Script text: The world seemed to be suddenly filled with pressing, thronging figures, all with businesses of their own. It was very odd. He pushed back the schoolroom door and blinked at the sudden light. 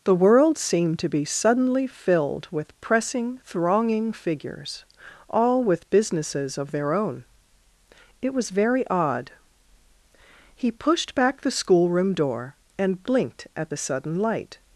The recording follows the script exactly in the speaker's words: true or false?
true